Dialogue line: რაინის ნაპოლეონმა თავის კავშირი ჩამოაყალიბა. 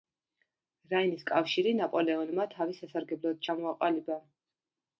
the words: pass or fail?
fail